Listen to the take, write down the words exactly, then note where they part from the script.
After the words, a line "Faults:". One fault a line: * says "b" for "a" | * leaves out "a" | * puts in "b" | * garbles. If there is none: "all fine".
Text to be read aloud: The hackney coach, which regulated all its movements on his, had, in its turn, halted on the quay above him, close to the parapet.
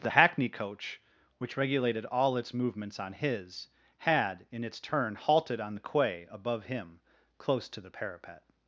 The hackney coach, which regulated all its movements on his, had, in its turn, halted on the quay above him, close to the parapet.
Faults:
all fine